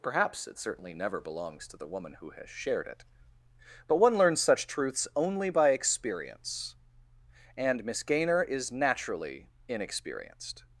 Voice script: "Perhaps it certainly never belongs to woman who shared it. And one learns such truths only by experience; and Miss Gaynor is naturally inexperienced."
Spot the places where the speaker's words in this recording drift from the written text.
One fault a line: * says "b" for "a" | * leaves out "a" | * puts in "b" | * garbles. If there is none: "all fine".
* puts in "the"
* puts in "has"
* says "But" for "And"